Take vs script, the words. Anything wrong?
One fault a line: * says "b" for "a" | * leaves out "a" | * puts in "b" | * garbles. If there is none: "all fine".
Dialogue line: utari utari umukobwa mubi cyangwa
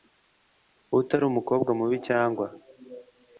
* leaves out "utari"